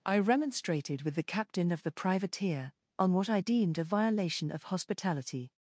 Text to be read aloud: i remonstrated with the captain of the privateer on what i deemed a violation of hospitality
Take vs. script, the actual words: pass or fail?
pass